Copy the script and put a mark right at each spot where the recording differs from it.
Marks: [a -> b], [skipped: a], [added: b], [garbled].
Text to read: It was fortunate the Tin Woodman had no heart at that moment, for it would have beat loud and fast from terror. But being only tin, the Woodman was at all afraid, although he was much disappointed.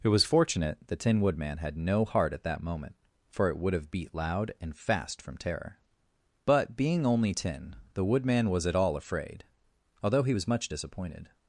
It was fortunate the Tin Woodman had no heart at that moment, for it would have beat loud and fast from terror. But being only tin, the Woodman was at all afraid, although he was much disappointed.